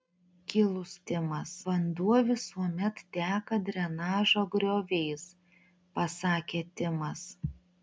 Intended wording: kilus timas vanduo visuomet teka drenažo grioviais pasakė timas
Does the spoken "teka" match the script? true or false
true